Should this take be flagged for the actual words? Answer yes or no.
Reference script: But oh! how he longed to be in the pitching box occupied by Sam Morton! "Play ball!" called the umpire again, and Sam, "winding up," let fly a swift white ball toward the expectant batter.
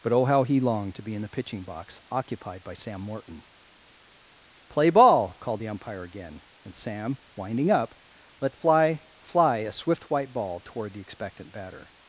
yes